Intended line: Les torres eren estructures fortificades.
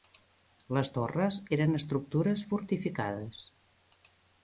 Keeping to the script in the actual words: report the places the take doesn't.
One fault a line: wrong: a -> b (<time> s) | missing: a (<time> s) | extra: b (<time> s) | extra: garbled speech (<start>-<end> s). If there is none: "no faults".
no faults